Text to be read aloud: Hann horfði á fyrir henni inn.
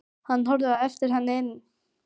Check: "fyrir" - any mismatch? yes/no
yes